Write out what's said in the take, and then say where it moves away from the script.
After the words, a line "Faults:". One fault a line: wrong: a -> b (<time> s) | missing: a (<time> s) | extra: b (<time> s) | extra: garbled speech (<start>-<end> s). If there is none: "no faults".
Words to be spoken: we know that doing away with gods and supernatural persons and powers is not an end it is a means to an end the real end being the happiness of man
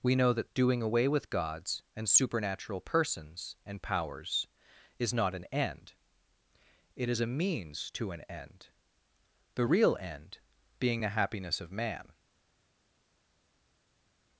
we know that doing away with gods and supernatural persons and powers is not an end it is a means to an end the real end being the happiness of man
Faults:
no faults